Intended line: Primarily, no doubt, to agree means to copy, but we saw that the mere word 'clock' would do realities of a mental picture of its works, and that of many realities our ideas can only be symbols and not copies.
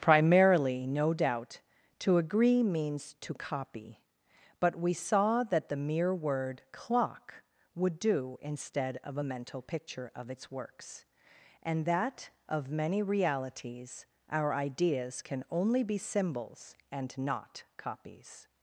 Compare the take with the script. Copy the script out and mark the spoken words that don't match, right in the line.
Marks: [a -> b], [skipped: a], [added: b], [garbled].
Primarily, no doubt, to agree means to copy, but we saw that the mere word 'clock' would do [realities -> instead] of a mental picture of its works, and that of many realities our ideas can only be symbols and not copies.